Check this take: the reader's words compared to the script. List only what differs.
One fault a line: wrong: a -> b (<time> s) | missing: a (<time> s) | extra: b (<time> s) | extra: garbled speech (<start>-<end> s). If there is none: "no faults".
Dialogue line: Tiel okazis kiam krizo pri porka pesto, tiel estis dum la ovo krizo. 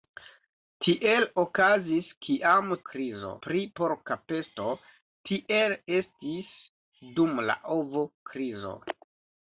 no faults